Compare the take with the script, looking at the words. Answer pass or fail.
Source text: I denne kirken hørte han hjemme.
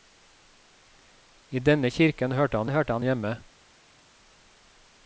fail